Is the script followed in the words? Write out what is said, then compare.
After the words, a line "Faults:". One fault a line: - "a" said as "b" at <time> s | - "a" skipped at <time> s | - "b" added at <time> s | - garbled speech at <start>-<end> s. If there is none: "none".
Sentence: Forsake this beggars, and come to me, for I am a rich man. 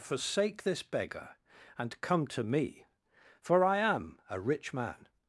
Forsake this beggar, and come to me, for I am a rich man.
Faults:
- "beggars" said as "beggar" at 0.8 s